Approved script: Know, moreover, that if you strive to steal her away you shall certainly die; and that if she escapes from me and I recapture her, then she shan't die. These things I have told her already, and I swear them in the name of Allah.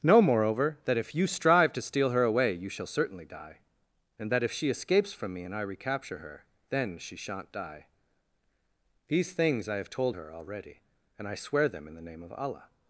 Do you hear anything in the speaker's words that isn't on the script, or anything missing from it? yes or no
no